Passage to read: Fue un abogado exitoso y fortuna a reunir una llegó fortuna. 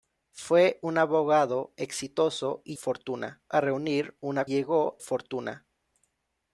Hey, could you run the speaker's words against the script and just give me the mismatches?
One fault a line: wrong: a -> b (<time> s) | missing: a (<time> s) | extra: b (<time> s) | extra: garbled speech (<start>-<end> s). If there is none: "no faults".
no faults